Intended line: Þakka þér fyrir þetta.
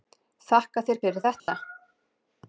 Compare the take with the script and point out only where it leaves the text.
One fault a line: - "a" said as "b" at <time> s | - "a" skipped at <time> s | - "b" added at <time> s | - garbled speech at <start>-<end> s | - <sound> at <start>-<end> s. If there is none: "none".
- dropout at 1.4-1.5 s